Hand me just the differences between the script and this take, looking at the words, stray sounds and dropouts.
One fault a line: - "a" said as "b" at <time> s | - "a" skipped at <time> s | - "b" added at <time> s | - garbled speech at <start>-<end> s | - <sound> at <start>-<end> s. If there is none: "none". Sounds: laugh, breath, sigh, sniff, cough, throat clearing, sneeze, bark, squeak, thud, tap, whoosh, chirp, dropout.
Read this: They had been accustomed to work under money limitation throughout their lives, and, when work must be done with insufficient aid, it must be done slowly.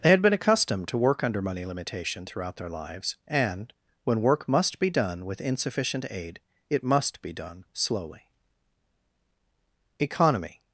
- "Economy" added at 10.0 s